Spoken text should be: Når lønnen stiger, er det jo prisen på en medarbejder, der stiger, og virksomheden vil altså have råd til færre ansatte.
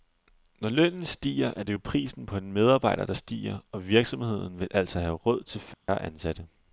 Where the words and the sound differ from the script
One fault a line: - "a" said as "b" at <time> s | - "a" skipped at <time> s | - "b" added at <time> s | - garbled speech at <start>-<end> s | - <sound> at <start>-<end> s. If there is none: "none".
- dropout at 5.7-5.9 s